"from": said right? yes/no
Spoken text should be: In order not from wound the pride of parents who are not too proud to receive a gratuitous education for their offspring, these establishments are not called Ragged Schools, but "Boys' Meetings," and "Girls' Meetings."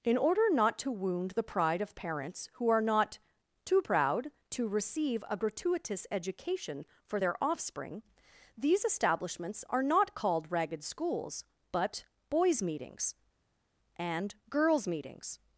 no